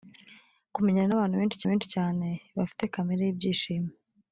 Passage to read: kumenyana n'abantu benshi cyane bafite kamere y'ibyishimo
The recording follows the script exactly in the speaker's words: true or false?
false